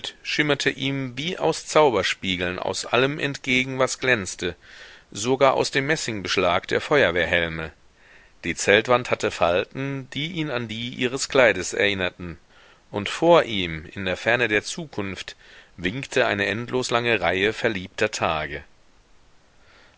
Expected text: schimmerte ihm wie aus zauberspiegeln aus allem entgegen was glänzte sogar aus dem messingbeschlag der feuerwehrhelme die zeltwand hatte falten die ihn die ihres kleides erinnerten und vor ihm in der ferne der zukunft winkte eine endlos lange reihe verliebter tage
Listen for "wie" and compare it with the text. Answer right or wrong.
right